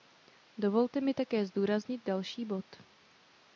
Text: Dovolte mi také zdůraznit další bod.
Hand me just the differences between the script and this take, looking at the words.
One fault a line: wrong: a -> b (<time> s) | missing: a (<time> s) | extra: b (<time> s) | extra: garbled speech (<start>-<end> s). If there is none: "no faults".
no faults